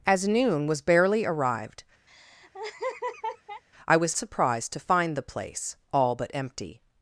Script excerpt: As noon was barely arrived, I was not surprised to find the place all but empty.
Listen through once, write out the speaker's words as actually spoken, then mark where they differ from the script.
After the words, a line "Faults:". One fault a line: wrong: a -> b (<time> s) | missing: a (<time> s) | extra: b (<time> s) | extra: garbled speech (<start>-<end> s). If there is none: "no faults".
As noon was barely arrived, I was surprised to find the place all but empty.
Faults:
missing: not (4.1 s)